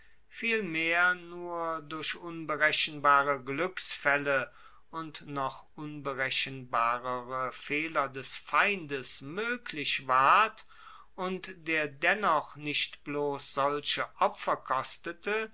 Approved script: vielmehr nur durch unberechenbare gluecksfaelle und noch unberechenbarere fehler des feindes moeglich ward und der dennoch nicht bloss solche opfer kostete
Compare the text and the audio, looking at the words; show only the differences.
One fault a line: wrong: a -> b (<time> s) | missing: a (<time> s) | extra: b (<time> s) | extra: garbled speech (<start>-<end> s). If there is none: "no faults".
no faults